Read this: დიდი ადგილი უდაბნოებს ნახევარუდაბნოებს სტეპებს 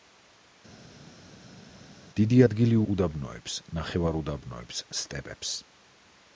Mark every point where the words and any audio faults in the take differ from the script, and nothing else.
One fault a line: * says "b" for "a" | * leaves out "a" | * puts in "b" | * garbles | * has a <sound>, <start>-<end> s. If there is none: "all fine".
all fine